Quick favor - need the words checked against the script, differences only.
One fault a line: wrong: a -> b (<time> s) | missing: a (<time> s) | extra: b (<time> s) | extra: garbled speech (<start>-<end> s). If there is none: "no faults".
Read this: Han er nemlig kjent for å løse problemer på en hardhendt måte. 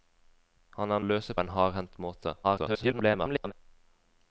missing: nemlig kjent for (1.0 s)
missing: problemer (1.4 s)
extra: garbled speech (2.4-3.5 s)